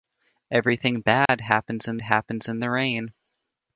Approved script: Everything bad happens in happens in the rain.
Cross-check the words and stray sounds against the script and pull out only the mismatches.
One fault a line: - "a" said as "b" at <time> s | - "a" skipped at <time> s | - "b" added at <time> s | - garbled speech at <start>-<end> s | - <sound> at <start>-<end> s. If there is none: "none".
- dropout at 1.3-1.3 s